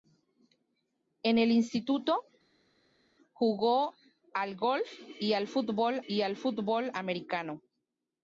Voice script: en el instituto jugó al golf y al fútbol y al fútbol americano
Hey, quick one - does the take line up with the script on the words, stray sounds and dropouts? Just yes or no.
yes